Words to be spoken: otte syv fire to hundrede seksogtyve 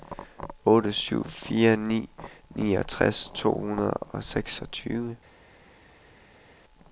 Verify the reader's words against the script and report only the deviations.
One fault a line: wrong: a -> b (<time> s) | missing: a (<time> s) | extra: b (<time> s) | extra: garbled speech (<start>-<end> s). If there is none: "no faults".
extra: ni niogtres (1.8 s)
extra: og (3.9 s)